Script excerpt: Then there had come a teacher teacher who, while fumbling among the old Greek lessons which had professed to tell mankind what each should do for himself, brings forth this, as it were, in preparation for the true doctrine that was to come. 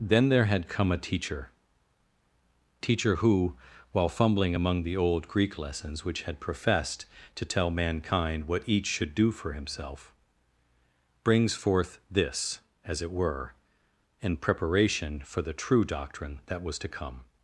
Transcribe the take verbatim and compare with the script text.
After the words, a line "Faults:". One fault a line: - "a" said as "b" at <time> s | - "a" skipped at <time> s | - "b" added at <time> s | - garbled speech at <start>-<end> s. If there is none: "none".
Then there had come a teacher teacher who, while fumbling among the old Greek lessons which had professed to tell mankind what each should do for himself, brings forth this, as it were, in preparation for the true doctrine that was to come.
Faults:
none